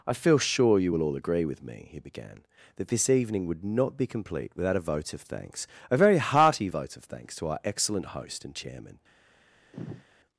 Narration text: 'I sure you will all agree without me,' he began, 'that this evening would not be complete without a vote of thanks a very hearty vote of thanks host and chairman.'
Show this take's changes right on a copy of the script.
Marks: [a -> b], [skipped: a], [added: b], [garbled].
'I [added: feel] sure you will all agree [without -> with] me,' he began, 'that this evening would not be complete without a vote of thanks a very hearty vote of thanks [added: to our excellent] host and chairman.'